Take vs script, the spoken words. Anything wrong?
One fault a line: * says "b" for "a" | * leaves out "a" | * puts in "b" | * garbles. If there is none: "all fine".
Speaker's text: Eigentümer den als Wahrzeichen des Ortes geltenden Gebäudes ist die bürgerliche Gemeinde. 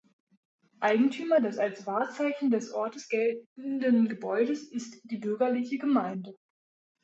* says "des" for "den"